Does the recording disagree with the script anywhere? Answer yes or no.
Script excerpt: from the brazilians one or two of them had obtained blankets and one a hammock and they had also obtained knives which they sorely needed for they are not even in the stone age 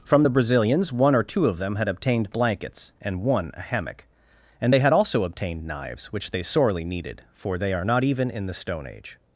no